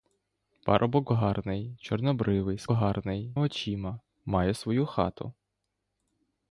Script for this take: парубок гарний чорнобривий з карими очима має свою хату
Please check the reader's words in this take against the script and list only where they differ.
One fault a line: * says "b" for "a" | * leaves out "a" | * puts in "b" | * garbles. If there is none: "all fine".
* says "гарний" for "карими"